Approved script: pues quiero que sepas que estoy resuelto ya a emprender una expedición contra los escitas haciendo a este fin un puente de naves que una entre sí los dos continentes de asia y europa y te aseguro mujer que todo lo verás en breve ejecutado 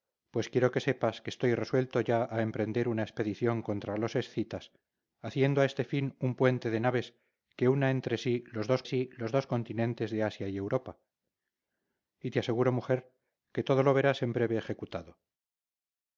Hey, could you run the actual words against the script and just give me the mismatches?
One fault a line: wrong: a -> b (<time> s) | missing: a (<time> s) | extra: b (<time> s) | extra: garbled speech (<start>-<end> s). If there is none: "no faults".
extra: sí los dos (8.8 s)